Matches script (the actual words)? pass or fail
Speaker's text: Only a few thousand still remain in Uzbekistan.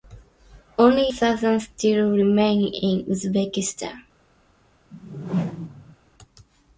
fail